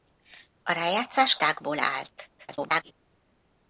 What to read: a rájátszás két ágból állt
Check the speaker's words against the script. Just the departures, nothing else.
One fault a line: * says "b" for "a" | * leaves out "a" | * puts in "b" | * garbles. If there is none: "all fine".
* leaves out "két"
* garbles